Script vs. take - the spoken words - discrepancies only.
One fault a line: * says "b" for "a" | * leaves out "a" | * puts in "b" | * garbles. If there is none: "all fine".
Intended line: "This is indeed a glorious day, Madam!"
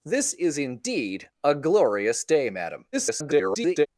* garbles